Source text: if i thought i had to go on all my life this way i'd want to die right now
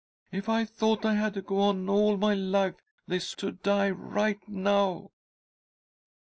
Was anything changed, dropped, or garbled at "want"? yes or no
yes